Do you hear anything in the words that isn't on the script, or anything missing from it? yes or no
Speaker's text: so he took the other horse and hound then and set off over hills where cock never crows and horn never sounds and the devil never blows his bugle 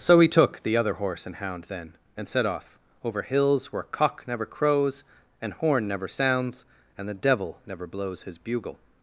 no